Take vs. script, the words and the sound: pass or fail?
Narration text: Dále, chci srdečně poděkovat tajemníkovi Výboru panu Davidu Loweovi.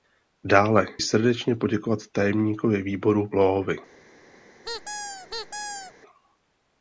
fail